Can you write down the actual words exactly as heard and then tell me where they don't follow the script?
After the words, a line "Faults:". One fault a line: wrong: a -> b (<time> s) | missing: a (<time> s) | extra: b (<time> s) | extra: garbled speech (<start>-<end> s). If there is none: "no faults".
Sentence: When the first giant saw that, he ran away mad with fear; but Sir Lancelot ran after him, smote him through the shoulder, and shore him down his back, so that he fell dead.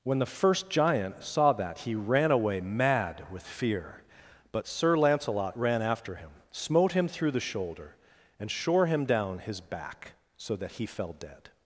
When the first giant saw that, he ran away mad with fear; but Sir Lancelot ran after him, smote him through the shoulder, and shore him down his back, so that he fell dead.
Faults:
no faults